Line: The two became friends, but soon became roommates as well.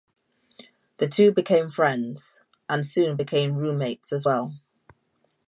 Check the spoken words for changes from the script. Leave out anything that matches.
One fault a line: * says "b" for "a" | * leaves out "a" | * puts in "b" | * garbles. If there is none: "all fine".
* says "and" for "but"